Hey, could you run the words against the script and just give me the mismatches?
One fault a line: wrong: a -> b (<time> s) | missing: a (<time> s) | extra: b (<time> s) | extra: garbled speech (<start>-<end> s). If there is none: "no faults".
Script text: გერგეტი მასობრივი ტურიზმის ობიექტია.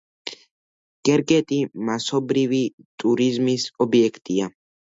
no faults